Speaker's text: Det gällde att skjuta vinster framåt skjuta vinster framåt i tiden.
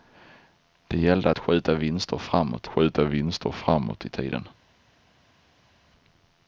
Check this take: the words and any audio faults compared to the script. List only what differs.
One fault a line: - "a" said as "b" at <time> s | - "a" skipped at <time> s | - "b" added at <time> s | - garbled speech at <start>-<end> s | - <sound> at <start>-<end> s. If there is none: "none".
none